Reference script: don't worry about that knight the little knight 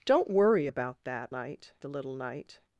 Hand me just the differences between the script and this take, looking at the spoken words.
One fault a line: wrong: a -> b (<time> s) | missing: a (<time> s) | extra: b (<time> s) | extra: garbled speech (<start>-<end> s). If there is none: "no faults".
no faults